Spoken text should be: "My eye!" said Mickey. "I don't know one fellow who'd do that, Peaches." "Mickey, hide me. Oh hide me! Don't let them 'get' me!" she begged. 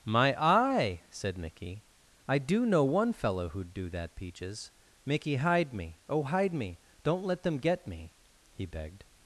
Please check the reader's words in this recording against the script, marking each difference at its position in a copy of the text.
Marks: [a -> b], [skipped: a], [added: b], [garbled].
"My eye!" said Mickey. "I [don't -> do] know one fellow who'd do that, Peaches." "Mickey, hide me. Oh hide me! Don't let them 'get' me!" [she -> he] begged.